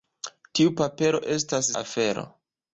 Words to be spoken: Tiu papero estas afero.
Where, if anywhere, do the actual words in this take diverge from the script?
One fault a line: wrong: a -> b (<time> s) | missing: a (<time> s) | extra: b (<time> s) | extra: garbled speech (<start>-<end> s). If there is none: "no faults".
no faults